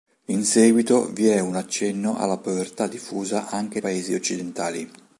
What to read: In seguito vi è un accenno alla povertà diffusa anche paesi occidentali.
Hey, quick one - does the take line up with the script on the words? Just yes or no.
yes